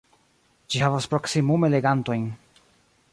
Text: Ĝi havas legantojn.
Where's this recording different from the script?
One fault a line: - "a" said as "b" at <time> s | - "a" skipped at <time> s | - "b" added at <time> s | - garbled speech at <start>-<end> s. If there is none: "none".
- "proksimume" added at 1.1 s